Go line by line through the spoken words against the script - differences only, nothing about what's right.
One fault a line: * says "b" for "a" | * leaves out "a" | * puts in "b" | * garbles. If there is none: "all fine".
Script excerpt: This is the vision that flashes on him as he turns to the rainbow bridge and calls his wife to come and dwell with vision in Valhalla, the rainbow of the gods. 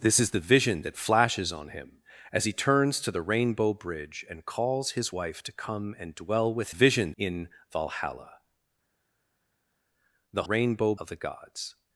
all fine